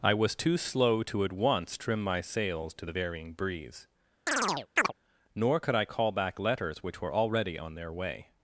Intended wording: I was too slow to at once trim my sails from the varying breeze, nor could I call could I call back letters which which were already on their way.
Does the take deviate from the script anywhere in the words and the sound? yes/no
yes